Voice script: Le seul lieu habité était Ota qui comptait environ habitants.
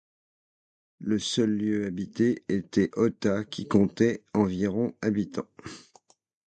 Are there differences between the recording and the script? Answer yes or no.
no